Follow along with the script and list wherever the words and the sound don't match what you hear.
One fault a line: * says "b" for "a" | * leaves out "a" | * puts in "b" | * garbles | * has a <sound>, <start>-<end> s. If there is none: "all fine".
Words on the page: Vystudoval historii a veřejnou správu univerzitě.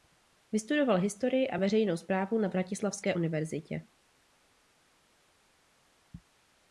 * puts in "na Vratislavské"